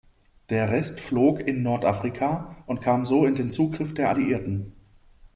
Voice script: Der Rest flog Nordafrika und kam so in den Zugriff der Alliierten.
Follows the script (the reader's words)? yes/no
no